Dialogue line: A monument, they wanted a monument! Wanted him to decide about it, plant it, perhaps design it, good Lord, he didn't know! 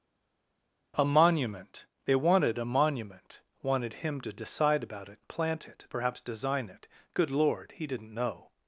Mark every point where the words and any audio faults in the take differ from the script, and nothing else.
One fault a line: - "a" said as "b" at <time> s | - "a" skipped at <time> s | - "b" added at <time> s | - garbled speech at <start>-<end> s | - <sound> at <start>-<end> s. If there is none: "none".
none